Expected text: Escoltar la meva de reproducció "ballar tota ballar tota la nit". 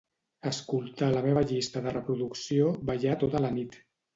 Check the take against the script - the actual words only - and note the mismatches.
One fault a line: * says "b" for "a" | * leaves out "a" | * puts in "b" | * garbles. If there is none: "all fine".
* puts in "llista"
* leaves out "ballar tota"